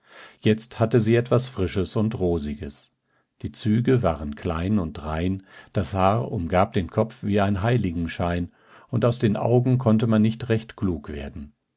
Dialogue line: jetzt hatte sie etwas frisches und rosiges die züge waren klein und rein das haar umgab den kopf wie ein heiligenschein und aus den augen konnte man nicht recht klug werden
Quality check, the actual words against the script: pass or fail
pass